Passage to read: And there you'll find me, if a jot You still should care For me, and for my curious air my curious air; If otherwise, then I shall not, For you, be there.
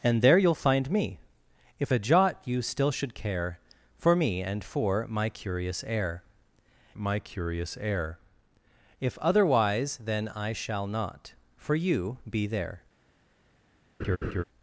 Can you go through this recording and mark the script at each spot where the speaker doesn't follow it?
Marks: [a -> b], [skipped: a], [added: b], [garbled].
And there you'll find me, if a jot You still should care For me, and for my curious air my curious air; If otherwise, then I shall not, For you, be there.